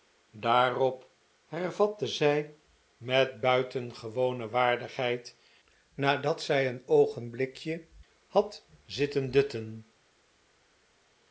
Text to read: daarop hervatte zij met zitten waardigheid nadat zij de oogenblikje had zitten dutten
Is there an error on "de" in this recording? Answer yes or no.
yes